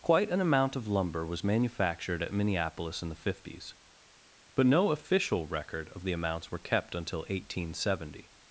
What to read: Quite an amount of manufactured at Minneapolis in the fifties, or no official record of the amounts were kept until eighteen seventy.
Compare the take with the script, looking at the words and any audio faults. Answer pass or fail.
fail